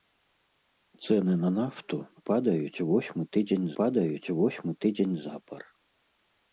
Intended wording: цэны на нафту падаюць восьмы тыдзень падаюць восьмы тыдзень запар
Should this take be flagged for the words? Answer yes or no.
no